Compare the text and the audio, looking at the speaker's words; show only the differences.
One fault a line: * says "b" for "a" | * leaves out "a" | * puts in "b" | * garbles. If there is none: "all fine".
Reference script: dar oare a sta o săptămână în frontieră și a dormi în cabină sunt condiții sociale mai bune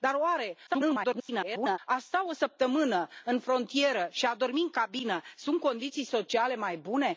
* garbles